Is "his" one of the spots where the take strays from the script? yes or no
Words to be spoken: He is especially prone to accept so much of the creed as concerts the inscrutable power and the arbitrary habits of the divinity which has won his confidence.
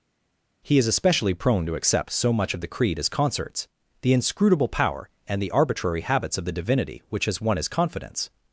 no